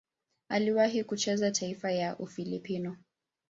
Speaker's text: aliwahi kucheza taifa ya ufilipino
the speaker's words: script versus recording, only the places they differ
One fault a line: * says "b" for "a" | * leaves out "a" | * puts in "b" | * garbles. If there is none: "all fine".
all fine